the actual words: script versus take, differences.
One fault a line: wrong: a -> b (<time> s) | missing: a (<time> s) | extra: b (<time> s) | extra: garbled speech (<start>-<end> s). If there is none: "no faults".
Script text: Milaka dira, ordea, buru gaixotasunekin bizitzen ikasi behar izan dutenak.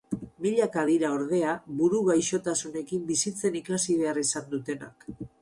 no faults